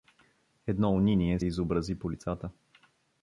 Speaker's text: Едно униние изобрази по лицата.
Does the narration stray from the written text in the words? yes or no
no